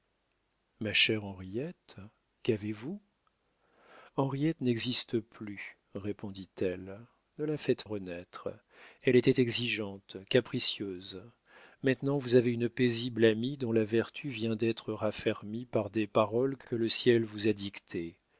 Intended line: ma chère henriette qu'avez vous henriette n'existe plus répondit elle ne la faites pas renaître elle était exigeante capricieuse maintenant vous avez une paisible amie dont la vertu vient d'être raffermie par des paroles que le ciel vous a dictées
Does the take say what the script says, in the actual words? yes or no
no